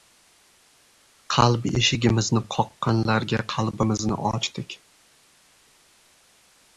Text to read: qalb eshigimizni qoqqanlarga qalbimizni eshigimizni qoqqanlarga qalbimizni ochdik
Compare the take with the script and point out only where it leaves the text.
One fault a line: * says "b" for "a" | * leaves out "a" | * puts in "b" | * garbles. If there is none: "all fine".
* leaves out "eshigimizni qoqqanlarga qalbimizni"